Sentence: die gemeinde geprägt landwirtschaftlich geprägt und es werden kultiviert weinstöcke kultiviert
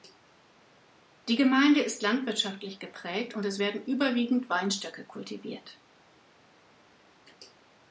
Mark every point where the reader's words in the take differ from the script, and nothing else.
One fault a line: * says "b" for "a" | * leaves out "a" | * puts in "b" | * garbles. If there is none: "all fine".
* says "ist" for "geprägt"
* says "überwiegend" for "kultiviert"